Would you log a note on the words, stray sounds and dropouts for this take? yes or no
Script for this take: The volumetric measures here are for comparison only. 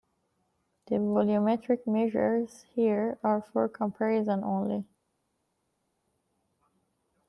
no